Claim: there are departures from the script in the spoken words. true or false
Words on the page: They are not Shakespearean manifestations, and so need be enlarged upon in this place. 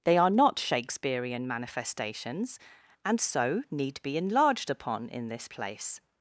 false